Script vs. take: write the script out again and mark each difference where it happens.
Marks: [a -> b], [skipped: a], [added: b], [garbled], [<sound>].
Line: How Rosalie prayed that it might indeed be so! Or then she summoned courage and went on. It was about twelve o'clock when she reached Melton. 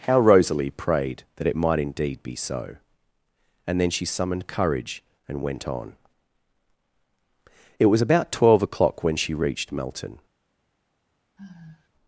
How Rosalie prayed that it might indeed be so! [Or -> And] then she summoned courage and went on. It was about twelve o'clock when she reached Melton. [sigh]